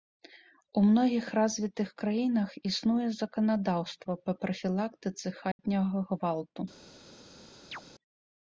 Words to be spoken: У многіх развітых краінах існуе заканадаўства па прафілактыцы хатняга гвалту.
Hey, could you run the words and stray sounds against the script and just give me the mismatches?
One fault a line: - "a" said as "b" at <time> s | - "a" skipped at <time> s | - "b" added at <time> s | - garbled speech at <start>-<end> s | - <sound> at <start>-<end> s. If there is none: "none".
- dropout at 5.5-5.6 s
- chirp at 7.7-7.8 s